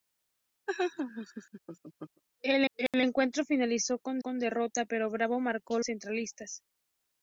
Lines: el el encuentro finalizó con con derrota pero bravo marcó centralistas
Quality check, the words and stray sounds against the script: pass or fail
fail